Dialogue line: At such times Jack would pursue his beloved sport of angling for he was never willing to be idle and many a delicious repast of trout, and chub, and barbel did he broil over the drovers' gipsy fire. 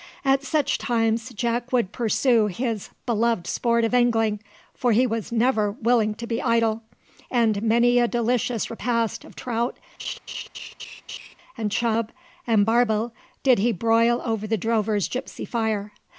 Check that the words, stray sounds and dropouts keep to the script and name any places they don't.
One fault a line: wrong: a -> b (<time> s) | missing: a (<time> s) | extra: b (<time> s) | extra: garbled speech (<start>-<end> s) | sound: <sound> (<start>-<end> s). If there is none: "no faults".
sound: laugh (10.0-11.3 s)